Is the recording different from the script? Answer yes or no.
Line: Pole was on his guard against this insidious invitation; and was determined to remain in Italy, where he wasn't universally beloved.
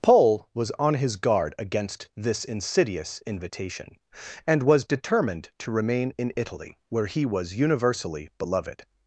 yes